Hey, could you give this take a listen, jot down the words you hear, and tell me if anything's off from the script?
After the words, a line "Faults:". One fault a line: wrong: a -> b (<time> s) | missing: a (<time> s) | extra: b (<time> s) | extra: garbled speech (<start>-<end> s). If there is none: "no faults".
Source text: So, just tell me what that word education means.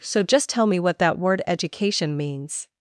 So, just tell me what that word education means.
Faults:
no faults